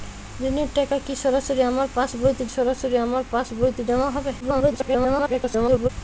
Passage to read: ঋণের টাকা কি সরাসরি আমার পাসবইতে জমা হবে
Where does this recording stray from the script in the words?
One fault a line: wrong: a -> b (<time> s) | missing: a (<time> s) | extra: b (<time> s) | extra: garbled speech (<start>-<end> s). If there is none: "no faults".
extra: সরাসরি আমার পাসবইতে (2.6 s)
extra: garbled speech (4.4-5.9 s)